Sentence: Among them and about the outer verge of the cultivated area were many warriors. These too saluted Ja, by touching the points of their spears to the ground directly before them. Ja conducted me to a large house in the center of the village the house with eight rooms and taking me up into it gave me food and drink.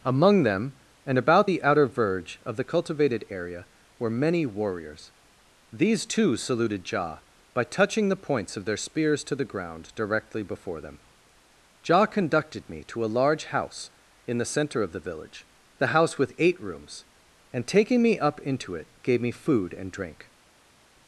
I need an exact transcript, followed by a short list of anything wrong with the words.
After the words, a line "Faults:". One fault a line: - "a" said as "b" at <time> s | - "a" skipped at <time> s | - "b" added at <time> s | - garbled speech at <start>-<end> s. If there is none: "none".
Among them and about the outer verge of the cultivated area were many warriors. These too saluted Ja, by touching the points of their spears to the ground directly before them. Ja conducted me to a large house in the center of the village the house with eight rooms and taking me up into it gave me food and drink.
Faults:
none